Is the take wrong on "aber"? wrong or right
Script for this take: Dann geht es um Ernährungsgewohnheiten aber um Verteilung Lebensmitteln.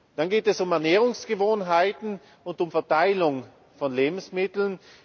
wrong